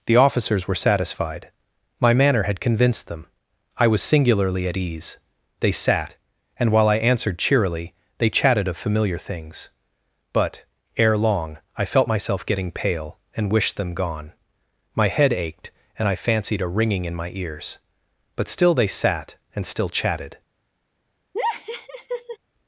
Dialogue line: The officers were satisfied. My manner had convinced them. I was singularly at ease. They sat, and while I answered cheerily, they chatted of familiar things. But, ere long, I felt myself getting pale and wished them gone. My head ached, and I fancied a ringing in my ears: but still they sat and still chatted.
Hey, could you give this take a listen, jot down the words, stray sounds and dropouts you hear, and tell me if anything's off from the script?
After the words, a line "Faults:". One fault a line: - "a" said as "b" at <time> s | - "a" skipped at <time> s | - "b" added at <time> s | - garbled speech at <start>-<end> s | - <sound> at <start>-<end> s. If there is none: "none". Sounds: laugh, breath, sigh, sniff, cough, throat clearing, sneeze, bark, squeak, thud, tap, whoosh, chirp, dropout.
The officers were satisfied. My manner had convinced them. I was singularly at ease. They sat, and while I answered cheerily, they chatted of familiar things. But, ere long, I felt myself getting pale and wished them gone. My head ached, and I fancied a ringing in my ears: but still they sat and still chatted.
Faults:
- laugh at 21.3-22.4 s